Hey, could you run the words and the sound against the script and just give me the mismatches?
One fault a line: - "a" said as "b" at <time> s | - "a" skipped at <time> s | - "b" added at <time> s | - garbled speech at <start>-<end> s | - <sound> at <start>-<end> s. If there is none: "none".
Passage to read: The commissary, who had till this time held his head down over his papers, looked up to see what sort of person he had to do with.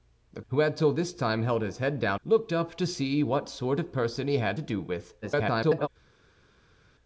- "commissary" skipped at 0.4 s
- "over his papers" skipped at 2.2 s
- garbled speech at 5.2-5.9 s